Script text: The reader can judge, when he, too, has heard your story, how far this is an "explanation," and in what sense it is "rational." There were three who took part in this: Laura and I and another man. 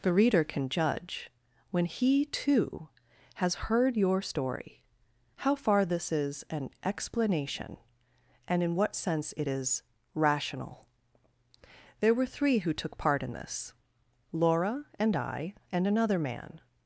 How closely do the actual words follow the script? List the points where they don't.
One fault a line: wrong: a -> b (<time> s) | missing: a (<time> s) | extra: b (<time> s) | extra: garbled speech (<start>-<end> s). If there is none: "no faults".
no faults